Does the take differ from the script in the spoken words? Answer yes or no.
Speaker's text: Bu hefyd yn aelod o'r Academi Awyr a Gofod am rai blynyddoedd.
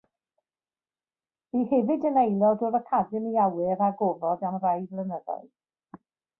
no